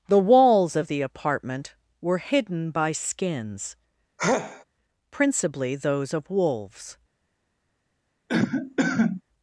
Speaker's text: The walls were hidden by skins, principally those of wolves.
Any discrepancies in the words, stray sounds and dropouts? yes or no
yes